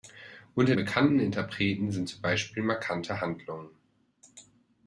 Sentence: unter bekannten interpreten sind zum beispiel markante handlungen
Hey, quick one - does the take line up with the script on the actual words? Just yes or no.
yes